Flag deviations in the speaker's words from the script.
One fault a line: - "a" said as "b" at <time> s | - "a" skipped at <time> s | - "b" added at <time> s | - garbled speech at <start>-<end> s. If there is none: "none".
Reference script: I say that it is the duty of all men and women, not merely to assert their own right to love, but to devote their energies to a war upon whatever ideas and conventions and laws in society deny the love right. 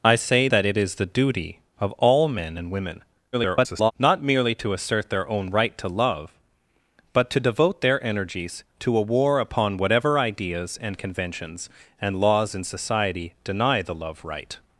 - garbled speech at 3.3-3.9 s